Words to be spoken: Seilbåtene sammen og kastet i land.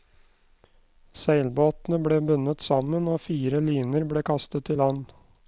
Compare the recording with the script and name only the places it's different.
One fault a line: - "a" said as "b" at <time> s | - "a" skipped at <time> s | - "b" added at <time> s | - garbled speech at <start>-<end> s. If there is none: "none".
- "ble bundet" added at 2.1 s
- "fire liner ble" added at 3.3 s